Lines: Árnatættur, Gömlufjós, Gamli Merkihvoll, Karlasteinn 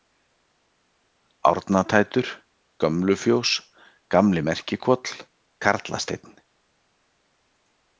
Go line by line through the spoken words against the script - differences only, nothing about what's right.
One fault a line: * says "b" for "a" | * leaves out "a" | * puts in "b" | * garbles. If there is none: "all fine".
all fine